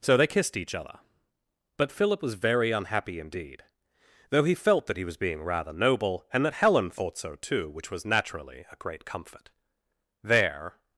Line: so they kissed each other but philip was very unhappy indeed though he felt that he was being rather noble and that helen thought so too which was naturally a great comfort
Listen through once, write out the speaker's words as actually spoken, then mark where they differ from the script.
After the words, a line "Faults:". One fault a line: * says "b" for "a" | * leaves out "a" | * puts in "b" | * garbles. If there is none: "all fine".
so they kissed each other but philip was very unhappy indeed though he felt that he was being rather noble and that helen thought so too which was naturally a great comfort there
Faults:
* puts in "there"